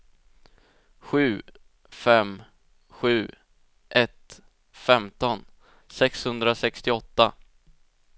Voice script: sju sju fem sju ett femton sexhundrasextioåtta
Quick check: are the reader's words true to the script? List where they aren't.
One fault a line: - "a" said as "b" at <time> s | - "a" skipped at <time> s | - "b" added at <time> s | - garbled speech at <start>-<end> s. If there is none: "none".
- "sju" skipped at 1.4 s